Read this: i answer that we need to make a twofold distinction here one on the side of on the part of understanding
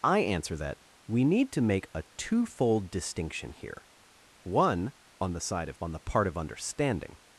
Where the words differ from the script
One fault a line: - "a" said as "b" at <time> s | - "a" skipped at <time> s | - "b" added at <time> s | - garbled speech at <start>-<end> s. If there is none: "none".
none